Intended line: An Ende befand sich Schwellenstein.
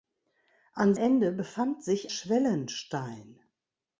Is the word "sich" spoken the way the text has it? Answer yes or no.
yes